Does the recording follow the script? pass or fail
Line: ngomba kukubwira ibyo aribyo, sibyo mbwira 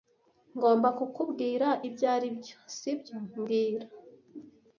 pass